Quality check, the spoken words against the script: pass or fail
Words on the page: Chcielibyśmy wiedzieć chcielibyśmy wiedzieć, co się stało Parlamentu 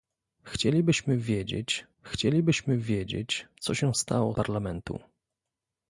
pass